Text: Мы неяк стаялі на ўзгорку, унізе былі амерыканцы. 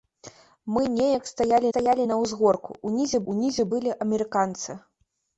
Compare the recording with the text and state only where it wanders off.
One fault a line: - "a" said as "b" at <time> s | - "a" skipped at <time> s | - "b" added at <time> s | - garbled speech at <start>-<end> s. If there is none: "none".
- "стаялі" added at 1.7 s
- "унізе" added at 3.3 s